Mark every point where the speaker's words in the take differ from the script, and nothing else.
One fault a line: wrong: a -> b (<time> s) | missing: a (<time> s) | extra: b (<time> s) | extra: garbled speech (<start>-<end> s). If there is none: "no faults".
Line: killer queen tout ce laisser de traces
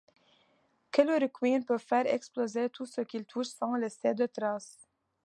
extra: peut faire exploser (1.6 s)
extra: qu'il touche sans (3.0 s)